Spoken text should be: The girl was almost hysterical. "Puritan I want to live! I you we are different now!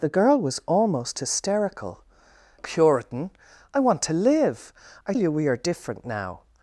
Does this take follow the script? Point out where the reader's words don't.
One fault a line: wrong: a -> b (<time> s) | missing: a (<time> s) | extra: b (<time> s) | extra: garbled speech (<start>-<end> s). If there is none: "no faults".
no faults